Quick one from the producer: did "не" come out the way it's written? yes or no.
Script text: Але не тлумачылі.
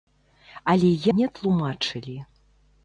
yes